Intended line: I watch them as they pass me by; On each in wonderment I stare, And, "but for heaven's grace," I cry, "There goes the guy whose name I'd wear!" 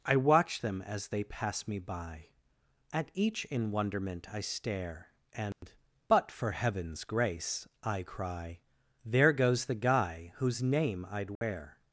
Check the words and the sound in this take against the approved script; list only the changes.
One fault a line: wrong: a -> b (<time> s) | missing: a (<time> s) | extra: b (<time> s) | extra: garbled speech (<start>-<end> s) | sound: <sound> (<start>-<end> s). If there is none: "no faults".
wrong: On -> At (2.9 s)
sound: dropout (5.5-5.6 s)
sound: dropout (11.4-11.4 s)